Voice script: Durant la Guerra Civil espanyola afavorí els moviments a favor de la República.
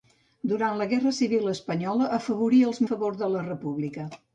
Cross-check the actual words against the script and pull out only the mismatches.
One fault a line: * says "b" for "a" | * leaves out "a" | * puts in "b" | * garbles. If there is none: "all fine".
* leaves out "moviments"